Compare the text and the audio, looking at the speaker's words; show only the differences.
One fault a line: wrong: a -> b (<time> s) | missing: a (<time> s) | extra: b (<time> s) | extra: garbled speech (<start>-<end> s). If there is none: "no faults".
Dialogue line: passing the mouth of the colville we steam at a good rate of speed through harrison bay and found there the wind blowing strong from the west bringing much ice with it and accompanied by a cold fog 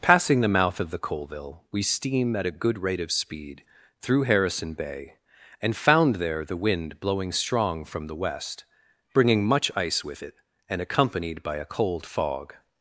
no faults